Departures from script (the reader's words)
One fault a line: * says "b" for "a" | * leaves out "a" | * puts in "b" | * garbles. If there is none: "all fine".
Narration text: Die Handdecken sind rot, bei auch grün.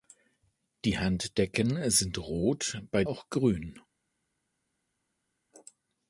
all fine